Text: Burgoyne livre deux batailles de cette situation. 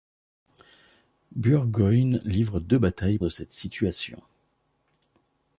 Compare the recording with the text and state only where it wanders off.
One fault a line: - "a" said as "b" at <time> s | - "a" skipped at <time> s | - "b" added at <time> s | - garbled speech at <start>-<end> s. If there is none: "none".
none